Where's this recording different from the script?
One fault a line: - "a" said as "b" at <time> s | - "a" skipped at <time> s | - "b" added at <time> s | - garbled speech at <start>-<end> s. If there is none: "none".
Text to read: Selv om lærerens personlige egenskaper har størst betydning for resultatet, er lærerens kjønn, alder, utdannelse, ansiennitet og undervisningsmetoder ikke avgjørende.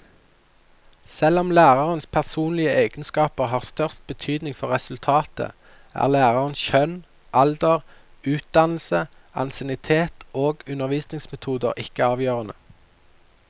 none